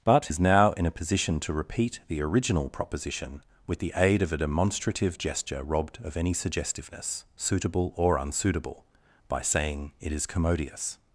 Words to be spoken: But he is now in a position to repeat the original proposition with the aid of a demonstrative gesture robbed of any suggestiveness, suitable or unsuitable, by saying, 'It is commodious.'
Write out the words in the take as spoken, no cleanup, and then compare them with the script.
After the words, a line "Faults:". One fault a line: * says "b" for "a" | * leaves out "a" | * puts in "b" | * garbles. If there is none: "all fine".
But is now in a position to repeat the original proposition with the aid of a demonstrative gesture robbed of any suggestiveness, suitable or unsuitable, by saying, 'It is commodious.'
Faults:
* leaves out "he"